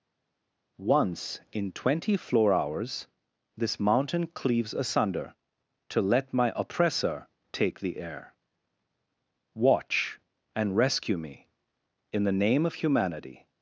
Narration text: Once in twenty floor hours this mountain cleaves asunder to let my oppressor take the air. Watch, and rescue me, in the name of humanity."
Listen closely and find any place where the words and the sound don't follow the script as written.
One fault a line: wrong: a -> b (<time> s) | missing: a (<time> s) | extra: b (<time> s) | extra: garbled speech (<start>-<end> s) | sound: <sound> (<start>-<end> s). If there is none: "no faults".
no faults